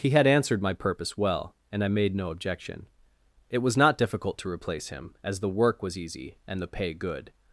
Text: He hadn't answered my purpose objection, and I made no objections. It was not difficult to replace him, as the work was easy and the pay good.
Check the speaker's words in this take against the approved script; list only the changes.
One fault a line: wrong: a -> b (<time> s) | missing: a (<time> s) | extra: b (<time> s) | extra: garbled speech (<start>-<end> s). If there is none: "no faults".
wrong: hadn't -> had (0.1 s)
wrong: objection -> well (1.1 s)
wrong: objections -> objection (2.3 s)